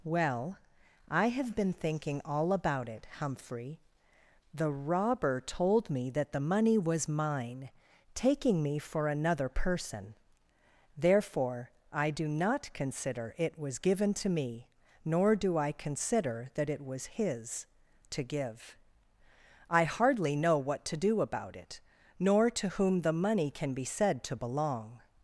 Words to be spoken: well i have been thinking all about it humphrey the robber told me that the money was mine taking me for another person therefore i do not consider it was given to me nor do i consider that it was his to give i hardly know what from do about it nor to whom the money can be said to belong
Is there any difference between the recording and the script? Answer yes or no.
yes